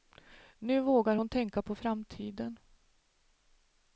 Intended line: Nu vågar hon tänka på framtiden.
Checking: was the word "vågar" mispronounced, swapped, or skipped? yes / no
no